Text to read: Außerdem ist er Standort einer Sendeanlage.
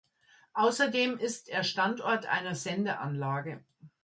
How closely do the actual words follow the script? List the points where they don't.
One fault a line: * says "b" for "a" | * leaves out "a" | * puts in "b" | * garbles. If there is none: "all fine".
all fine